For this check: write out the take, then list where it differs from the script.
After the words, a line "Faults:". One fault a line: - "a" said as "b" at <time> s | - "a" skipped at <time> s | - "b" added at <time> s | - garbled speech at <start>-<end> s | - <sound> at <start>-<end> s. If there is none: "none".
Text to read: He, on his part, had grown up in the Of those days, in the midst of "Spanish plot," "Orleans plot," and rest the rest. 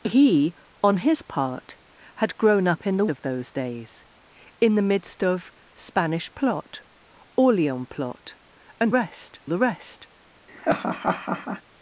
He, on his part, had grown up in the Of those days, in the midst of "Spanish plot," "Orleans plot," and rest the rest.
Faults:
- laugh at 10.5-11.6 s